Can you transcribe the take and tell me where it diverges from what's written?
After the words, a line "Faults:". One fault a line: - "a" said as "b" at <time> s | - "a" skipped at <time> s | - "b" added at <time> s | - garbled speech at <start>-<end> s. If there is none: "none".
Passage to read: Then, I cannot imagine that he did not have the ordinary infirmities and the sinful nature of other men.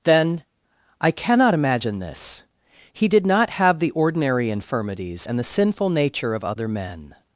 Then, I cannot imagine this he did not have the ordinary infirmities and the sinful nature of other men.
Faults:
- "that" said as "this" at 2.0 s